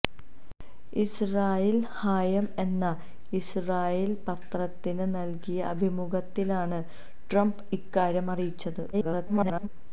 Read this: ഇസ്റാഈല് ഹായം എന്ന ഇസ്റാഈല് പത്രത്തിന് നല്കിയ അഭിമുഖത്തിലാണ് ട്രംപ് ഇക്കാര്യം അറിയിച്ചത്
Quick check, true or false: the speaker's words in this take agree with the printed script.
false